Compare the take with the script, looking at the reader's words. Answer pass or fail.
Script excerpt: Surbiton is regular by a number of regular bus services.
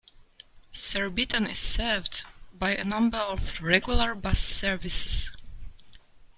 fail